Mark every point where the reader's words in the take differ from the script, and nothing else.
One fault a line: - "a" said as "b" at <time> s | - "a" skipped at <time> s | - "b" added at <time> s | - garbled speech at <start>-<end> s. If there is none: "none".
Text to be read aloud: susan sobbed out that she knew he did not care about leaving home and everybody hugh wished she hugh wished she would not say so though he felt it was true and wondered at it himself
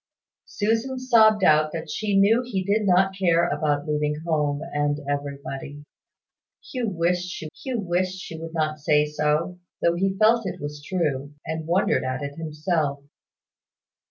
none